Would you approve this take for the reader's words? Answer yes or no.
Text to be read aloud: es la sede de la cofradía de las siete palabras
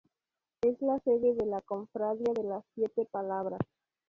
yes